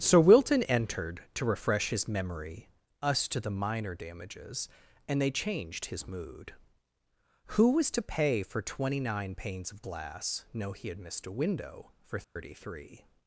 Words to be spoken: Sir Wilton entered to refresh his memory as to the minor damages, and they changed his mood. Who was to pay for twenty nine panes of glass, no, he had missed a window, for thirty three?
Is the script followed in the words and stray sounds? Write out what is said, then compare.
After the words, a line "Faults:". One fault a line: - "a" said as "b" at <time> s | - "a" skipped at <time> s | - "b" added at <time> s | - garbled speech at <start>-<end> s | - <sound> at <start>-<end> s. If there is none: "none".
Sir Wilton entered to refresh his memory us to the minor damages, and they changed his mood. Who was to pay for twenty nine panes of glass, no, he had missed a window, for thirty three?
Faults:
- "as" said as "us" at 3.0 s
- dropout at 12.2-12.4 s